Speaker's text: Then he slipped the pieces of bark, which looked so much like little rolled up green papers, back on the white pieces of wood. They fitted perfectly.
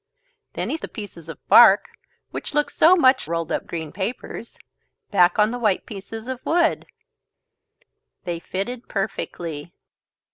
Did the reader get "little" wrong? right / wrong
wrong